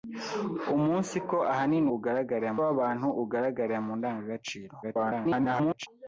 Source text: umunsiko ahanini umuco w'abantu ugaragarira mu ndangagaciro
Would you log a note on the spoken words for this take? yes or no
yes